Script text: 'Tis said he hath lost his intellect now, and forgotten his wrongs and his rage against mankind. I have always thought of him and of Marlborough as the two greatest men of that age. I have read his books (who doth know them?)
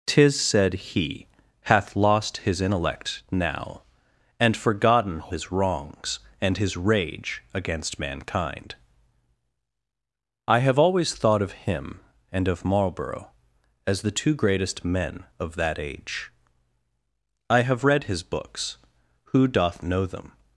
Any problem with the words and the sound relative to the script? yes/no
no